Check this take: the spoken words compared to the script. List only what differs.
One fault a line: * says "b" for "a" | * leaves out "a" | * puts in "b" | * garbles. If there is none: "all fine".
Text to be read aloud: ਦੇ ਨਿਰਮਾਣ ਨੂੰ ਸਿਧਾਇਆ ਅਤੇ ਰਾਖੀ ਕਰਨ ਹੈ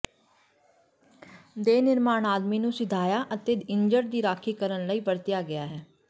* puts in "ਆਦਮੀ"
* puts in "ਇੱਜੜ ਦੀ"
* puts in "ਲਈ ਵਰਤਿਆ ਗਿਆ"